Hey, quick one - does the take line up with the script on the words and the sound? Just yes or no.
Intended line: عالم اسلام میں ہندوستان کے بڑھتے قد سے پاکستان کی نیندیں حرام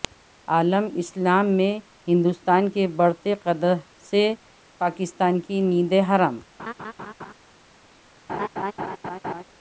no